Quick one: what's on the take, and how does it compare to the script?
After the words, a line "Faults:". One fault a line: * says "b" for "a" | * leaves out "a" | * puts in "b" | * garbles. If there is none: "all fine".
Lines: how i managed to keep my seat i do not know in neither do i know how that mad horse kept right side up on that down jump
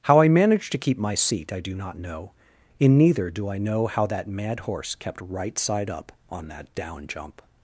how i managed to keep my seat i do not know in neither do i know how that mad horse kept right side up on that down jump
Faults:
all fine